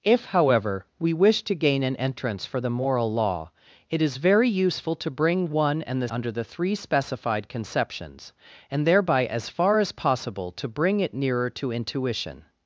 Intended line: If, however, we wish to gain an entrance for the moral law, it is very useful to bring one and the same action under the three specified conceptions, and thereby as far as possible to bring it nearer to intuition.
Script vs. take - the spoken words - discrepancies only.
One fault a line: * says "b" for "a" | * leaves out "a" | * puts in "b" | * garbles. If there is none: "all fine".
* leaves out "same action"